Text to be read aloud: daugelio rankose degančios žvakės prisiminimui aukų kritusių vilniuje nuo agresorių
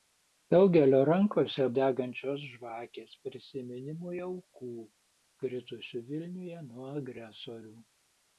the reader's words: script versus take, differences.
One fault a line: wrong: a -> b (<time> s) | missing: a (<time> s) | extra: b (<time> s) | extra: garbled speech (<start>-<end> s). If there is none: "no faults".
no faults